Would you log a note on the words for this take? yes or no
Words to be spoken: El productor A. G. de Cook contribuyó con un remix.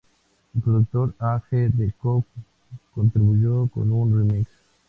no